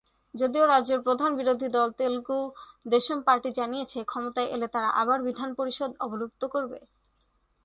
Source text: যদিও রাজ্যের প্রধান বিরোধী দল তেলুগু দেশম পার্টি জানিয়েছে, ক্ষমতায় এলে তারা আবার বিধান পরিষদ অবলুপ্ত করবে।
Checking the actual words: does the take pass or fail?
pass